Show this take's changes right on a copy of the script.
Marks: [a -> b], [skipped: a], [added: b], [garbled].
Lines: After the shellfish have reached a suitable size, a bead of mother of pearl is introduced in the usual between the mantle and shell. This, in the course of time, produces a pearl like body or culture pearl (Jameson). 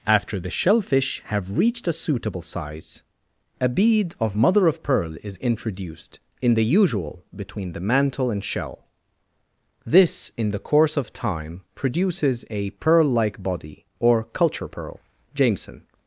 After the shellfish have reached a suitable size, a bead of mother of pearl is introduced in the usual between the mantle and shell. This, in the course of time, produces a pearl like body or culture pearl (Jameson).